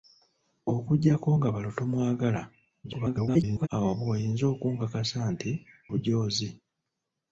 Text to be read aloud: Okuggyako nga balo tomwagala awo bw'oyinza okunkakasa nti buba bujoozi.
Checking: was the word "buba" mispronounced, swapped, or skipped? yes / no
yes